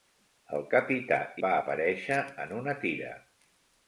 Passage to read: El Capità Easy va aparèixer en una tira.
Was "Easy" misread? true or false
true